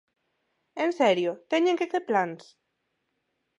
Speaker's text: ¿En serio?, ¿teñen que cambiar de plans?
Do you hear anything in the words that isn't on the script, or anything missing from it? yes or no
yes